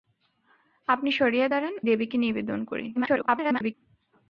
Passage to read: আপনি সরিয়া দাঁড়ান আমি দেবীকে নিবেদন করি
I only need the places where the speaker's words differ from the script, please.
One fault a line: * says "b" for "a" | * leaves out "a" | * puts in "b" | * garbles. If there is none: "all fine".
* leaves out "আমি"
* garbles